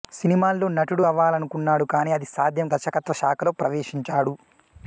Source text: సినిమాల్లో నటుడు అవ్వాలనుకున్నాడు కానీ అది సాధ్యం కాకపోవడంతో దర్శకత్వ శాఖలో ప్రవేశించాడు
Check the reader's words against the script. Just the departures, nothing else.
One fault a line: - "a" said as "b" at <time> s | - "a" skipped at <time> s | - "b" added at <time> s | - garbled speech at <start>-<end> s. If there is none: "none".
- "కాకపోవడంతో" skipped at 2.7 s